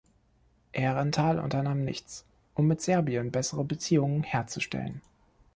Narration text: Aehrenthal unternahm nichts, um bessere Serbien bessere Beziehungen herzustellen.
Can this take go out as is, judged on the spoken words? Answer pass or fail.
fail